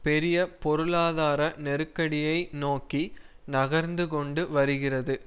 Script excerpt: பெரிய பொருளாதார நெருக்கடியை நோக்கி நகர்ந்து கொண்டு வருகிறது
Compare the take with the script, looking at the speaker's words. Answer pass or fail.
pass